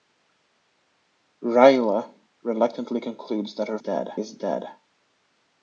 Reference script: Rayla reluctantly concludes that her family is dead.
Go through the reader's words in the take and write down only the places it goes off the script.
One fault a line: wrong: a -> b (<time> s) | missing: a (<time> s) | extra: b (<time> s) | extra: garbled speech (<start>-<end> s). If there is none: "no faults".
wrong: family -> dead (3.8 s)